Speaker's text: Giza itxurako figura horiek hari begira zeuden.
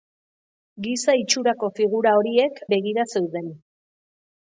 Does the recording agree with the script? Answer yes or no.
no